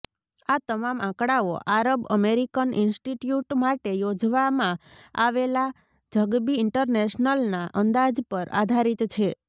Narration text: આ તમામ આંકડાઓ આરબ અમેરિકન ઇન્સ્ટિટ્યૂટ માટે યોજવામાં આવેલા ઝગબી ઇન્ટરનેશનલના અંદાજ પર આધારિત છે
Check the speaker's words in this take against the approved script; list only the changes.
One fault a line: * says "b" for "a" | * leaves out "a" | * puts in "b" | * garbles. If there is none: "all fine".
all fine